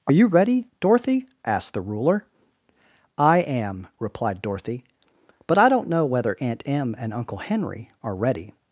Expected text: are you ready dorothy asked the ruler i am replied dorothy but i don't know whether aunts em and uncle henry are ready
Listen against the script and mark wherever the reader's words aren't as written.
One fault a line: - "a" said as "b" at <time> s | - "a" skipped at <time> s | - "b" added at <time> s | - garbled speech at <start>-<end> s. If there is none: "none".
- "aunts" said as "aunt" at 6.4 s